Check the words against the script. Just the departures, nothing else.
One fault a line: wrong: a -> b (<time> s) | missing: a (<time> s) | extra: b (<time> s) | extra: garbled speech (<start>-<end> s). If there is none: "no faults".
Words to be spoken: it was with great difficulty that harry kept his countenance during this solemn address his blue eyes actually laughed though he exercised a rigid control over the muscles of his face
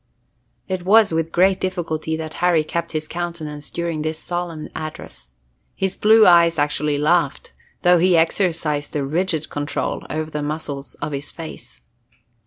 no faults